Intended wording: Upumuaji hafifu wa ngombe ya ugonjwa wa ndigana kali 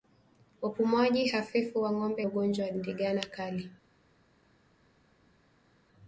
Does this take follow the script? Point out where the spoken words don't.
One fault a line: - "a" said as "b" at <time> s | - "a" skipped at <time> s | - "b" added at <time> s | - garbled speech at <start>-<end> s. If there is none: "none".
none